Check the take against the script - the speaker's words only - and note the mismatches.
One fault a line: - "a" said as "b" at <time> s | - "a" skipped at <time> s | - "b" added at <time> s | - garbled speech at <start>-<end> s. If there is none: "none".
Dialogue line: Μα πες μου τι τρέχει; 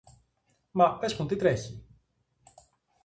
none